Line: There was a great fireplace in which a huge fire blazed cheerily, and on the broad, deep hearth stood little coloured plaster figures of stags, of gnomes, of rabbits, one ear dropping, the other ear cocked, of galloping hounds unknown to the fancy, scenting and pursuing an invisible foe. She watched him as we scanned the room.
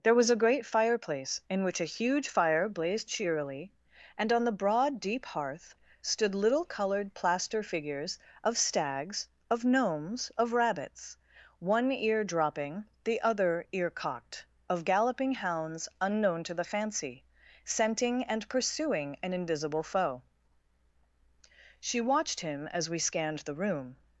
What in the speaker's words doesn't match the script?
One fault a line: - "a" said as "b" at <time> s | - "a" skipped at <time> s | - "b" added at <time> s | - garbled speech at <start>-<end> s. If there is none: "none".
none